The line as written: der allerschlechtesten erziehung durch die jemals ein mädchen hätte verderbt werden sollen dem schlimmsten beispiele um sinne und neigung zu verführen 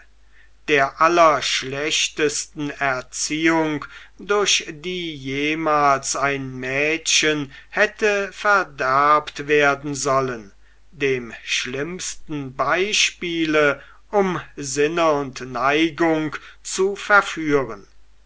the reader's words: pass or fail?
pass